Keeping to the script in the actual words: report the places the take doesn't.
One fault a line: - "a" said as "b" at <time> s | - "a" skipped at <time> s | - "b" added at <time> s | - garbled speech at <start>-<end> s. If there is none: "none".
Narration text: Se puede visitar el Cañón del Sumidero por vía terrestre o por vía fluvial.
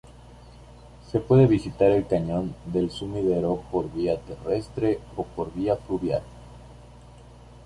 none